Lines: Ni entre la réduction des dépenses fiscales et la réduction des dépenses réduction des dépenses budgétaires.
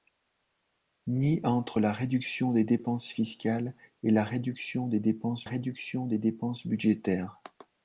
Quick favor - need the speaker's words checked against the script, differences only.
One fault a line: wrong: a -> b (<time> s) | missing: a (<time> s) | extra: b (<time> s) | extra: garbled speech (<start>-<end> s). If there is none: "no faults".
no faults